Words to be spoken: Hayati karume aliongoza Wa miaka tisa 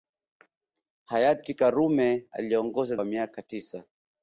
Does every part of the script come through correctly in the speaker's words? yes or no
yes